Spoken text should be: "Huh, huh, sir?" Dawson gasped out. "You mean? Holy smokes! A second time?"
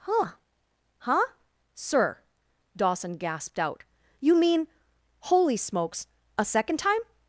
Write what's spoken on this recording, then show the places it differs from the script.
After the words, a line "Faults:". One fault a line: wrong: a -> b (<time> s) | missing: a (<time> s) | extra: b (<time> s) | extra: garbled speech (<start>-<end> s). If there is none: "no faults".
"Huh, huh, sir?" Dawson gasped out. "You mean? Holy smokes! A second time?"
Faults:
no faults